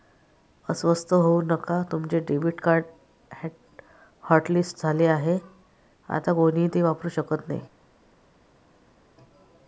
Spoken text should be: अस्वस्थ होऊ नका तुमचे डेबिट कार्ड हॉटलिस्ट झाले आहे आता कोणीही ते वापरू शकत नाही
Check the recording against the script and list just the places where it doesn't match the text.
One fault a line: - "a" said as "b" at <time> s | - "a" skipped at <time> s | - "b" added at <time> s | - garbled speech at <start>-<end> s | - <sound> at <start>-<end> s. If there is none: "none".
none